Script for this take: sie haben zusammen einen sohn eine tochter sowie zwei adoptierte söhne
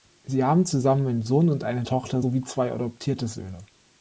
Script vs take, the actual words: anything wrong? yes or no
yes